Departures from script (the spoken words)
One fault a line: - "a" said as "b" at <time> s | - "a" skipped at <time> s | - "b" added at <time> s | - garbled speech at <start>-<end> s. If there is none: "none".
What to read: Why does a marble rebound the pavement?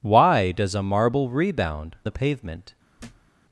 none